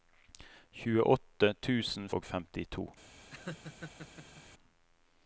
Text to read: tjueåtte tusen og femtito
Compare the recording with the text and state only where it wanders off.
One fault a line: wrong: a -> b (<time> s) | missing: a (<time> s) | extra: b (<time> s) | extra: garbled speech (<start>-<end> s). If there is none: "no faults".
no faults